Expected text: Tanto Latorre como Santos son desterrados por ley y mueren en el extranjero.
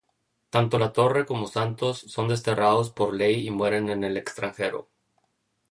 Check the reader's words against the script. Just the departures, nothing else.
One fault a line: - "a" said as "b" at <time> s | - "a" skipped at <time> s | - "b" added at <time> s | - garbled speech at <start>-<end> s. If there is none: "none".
none